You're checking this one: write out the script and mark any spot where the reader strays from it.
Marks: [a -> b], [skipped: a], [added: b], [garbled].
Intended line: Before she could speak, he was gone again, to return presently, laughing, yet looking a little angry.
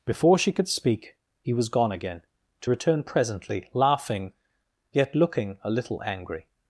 Before she could speak, he was gone again, to return presently, laughing, yet looking a little angry.